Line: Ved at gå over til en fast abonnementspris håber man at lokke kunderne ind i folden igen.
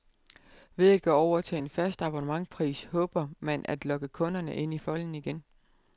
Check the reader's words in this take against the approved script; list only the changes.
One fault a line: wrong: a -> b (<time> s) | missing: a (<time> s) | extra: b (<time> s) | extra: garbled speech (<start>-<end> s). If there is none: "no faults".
no faults